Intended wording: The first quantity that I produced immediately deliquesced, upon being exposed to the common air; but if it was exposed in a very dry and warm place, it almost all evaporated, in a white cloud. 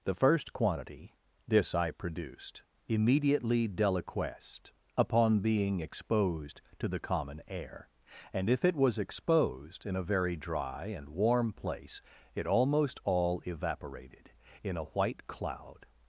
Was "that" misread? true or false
true